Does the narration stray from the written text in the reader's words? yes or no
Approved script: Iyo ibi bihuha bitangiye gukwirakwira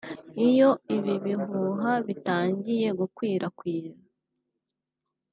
no